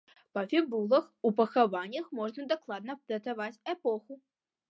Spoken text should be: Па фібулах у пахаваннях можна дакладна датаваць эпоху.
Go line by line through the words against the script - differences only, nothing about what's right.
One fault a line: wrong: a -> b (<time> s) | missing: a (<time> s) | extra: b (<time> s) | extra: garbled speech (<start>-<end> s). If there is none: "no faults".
no faults